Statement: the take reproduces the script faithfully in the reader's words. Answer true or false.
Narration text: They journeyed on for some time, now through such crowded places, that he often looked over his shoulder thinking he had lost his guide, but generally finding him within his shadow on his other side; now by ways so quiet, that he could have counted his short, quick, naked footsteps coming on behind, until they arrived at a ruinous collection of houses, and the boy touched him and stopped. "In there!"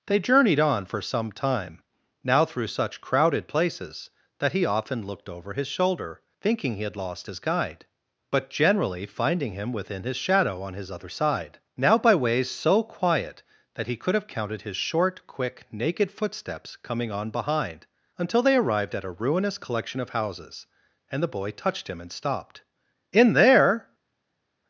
true